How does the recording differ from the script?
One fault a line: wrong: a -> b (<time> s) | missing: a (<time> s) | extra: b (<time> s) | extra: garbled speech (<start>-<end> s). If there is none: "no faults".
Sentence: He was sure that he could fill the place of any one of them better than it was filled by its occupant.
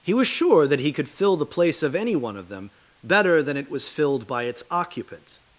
no faults